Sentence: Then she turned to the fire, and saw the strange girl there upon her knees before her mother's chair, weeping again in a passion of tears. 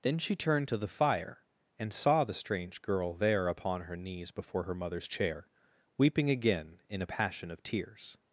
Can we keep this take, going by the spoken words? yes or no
yes